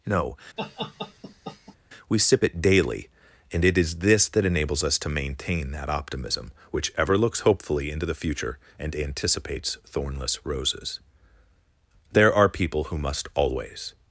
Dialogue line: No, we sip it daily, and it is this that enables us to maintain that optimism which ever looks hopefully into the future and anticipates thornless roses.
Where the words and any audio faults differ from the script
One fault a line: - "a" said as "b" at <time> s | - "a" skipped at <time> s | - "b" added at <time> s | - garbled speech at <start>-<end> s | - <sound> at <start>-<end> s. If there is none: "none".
- laugh at 0.6-1.8 s
- "There are people who must always" added at 12.1 s